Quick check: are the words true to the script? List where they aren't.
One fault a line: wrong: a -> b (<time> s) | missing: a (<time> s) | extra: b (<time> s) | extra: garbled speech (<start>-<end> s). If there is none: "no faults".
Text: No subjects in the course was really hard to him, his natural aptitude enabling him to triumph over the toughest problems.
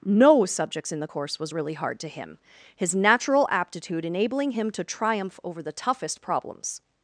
no faults